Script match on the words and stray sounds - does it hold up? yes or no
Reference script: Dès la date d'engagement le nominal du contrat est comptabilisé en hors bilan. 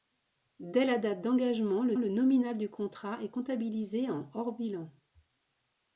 no